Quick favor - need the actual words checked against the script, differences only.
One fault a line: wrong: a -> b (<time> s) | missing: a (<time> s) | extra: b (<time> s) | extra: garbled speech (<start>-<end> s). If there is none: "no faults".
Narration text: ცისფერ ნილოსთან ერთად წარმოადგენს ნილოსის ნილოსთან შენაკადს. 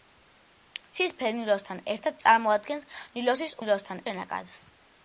no faults